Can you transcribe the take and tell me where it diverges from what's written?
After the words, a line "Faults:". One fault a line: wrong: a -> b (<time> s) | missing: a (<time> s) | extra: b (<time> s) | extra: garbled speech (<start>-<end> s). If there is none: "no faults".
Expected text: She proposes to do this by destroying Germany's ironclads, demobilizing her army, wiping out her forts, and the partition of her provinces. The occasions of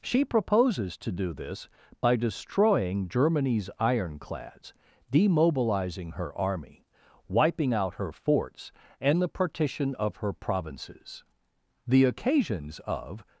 She proposes to do this by destroying Germany's ironclads, demobilizing her army, wiping out her forts, and the partition of her provinces. The occasions of
Faults:
no faults